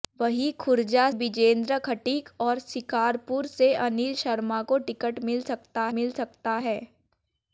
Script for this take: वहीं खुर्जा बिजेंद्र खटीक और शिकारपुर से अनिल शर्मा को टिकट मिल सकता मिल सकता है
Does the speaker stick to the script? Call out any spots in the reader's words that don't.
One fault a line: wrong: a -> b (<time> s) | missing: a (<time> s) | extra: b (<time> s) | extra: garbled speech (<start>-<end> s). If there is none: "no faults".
no faults